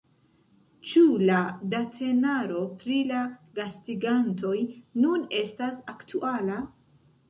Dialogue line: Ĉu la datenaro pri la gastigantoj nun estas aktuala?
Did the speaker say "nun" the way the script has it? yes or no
yes